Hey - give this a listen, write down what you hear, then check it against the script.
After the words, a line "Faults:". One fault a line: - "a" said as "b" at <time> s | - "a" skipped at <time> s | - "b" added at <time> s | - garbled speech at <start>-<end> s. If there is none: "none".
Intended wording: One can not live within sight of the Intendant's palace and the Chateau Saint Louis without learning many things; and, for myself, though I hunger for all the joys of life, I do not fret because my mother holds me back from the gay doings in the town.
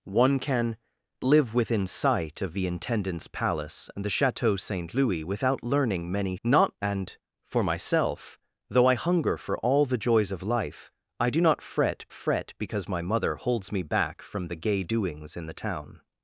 One can live within sight of the Intendant's palace and the Chateau Saint Louis without learning many not; and, for myself, though I hunger for all the joys of life, I do not fret fret because my mother holds me back from the gay doings in the town.
Faults:
- "not" skipped at 0.8 s
- "things" said as "not" at 6.4 s
- "fret" added at 12.1 s